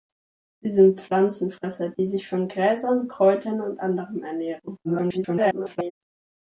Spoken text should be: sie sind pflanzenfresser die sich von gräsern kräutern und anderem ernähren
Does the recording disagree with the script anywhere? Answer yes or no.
yes